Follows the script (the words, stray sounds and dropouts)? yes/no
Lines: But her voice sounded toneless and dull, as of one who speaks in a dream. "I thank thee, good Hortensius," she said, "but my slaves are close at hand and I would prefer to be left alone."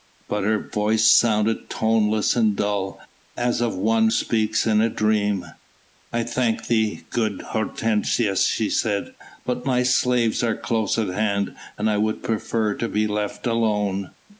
no